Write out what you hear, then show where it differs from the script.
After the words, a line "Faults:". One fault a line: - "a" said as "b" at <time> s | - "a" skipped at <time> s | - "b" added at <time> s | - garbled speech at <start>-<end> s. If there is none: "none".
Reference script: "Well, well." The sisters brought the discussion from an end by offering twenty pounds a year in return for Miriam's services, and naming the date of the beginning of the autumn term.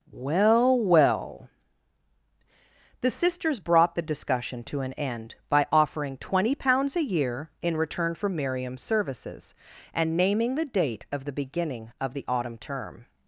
"Well, well." The sisters brought the discussion to an end by offering twenty pounds a year in return for Miriam's services, and naming the date of the beginning of the autumn term.
Faults:
- "from" said as "to" at 4.6 s